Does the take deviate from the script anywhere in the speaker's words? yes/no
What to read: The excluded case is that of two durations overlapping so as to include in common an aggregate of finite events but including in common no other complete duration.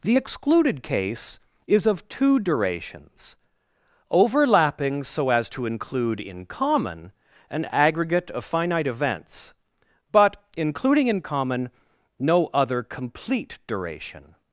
yes